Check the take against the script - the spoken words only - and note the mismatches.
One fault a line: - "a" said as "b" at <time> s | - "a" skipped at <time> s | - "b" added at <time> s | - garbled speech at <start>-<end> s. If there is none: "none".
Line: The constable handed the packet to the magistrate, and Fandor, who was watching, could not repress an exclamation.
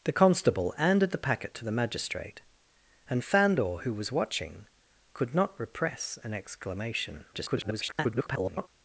- garbled speech at 7.3-8.7 s